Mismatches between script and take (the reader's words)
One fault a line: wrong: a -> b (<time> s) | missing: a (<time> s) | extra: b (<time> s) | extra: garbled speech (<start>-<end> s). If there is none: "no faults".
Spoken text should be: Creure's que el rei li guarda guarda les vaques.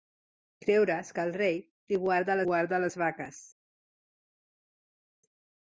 no faults